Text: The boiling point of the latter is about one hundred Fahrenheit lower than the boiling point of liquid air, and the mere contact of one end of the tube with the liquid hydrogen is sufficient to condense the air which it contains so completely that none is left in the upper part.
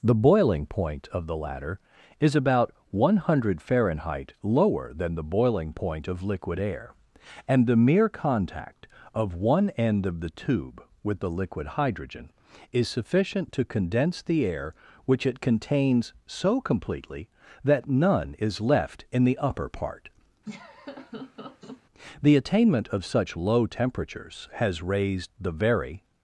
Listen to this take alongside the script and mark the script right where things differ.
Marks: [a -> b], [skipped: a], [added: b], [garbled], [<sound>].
The boiling point of the latter is about one hundred Fahrenheit lower than the boiling point of liquid air, and the mere contact of one end of the tube with the liquid hydrogen is sufficient to condense the air which it contains so completely that none is left in the upper part. [laugh] [added: The attainment of such low temperatures has raised the very]